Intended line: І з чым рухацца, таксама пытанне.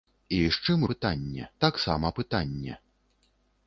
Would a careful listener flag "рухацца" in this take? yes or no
yes